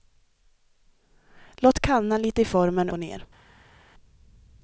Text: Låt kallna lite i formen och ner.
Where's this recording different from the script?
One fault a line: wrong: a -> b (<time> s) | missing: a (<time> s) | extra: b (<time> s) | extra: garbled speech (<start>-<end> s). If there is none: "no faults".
no faults